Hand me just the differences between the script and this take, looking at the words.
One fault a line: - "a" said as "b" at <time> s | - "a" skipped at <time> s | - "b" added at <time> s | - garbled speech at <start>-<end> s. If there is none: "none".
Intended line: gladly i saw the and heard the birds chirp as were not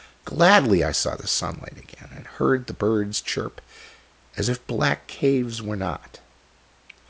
- "sunlight again" added at 1.3 s
- "if black caves" added at 4.5 s